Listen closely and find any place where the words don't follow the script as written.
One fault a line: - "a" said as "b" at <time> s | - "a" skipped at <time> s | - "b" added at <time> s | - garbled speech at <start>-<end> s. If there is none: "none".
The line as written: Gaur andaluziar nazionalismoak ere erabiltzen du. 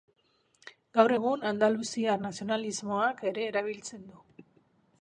- "egun" added at 1.1 s